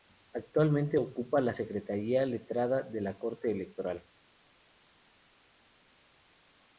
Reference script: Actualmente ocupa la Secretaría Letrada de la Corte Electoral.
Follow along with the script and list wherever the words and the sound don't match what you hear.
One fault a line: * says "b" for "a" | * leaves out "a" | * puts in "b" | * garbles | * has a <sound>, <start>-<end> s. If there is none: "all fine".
all fine